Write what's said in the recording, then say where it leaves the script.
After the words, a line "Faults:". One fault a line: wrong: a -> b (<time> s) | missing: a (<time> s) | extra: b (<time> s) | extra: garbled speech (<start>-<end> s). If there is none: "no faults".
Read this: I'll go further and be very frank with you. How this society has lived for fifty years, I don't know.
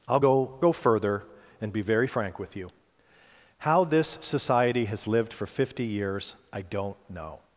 I'll go go further and be very frank with you. How this society has lived for fifty years, I don't know.
Faults:
extra: go (0.6 s)